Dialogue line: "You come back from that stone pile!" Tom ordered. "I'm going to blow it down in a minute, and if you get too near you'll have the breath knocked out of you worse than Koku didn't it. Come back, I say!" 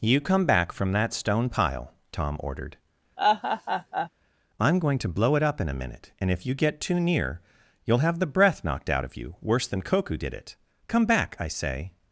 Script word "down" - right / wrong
wrong